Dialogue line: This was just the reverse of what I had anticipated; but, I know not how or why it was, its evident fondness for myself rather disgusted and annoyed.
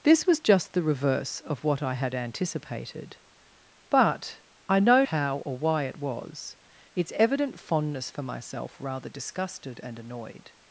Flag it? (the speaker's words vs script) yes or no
yes